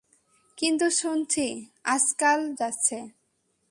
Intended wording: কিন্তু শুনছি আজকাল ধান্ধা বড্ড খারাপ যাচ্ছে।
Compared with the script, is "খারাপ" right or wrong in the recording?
wrong